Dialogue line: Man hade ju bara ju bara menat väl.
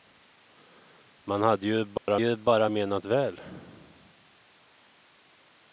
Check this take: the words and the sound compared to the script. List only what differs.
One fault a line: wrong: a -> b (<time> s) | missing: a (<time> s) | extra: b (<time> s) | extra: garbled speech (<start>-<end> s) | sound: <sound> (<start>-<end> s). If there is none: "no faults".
sound: dropout (2.0-2.1 s)